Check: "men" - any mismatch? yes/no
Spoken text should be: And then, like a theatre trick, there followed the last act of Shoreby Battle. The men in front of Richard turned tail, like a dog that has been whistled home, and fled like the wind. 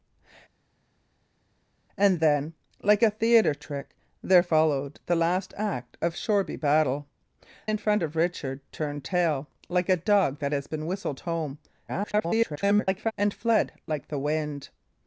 yes